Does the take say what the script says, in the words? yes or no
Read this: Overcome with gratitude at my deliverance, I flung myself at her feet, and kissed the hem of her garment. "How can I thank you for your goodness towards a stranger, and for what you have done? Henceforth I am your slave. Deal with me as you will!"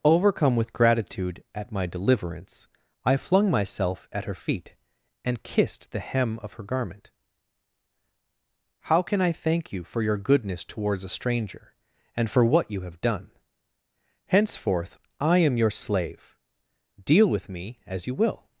yes